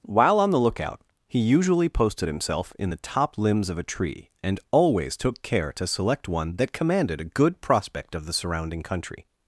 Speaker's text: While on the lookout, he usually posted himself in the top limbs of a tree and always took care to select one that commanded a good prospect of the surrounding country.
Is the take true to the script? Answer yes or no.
yes